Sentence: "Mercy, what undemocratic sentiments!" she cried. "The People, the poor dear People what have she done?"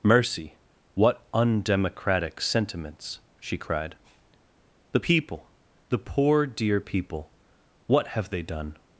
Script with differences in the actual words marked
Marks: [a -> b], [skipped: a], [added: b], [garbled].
"Mercy, what undemocratic sentiments!" she cried. "The People, the poor dear People what have [she -> they] done?"